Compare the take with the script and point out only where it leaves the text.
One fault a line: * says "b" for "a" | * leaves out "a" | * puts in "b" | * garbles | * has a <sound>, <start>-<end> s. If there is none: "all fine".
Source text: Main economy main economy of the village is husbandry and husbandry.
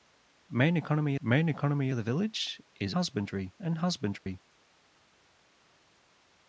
* has a dropout, 4.2-4.3 s